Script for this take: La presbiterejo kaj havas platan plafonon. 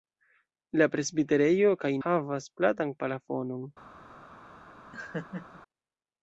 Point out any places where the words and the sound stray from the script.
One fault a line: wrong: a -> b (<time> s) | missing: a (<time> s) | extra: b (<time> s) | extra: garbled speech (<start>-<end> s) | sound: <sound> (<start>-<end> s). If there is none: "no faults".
sound: laugh (4.9-5.6 s)